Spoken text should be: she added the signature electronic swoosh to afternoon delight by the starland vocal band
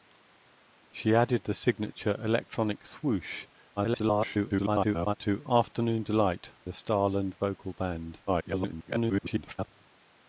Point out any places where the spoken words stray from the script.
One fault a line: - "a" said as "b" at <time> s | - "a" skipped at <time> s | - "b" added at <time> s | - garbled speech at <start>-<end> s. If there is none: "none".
- garbled speech at 3.8-5.1 s
- "by" skipped at 6.5 s
- garbled speech at 8.3-9.7 s